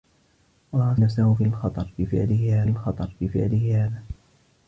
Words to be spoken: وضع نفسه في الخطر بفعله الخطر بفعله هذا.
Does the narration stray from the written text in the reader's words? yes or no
no